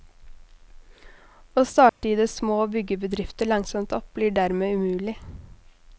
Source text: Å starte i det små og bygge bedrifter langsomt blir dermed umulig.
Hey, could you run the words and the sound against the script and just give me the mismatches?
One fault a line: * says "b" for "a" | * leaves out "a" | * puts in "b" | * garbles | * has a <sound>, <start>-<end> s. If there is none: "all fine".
* has a dropout, 1.9-2.0 s
* puts in "opp"